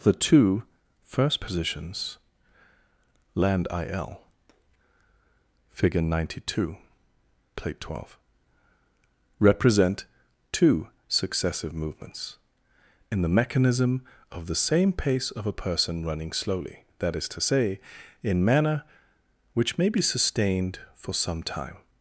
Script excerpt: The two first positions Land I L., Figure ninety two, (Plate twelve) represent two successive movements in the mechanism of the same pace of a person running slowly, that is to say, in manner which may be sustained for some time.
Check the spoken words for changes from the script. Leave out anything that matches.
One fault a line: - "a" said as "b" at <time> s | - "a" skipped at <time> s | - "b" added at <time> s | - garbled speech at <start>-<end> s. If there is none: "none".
none